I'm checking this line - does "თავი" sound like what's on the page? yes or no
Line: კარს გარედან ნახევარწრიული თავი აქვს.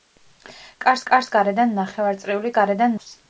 no